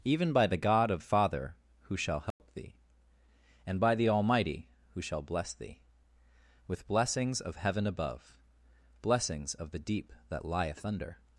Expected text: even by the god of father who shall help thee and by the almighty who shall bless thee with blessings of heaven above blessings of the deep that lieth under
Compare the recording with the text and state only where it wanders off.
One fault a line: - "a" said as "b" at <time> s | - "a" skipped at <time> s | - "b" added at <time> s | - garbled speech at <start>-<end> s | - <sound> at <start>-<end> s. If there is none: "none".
- dropout at 2.3-2.4 s